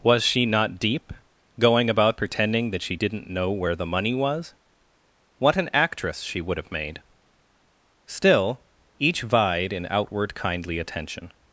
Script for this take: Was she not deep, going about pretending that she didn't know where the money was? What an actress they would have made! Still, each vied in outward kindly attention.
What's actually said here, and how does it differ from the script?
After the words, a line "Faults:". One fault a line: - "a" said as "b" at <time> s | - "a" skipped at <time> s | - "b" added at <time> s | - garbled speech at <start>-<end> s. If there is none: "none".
Was she not deep, going about pretending that she didn't know where the money was? What an actress she would have made! Still, each vied in outward kindly attention.
Faults:
- "they" said as "she" at 6.2 s